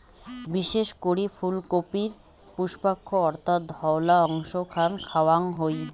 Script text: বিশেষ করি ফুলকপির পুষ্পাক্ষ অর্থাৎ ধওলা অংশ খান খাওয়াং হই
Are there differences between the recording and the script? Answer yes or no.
no